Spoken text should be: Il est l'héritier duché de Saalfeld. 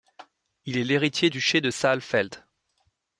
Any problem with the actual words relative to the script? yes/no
no